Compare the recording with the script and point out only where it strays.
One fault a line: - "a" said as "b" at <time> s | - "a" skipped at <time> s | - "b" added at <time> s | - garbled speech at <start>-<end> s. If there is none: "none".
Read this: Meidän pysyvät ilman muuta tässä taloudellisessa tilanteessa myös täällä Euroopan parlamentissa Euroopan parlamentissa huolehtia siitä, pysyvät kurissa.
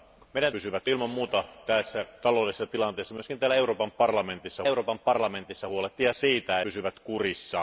none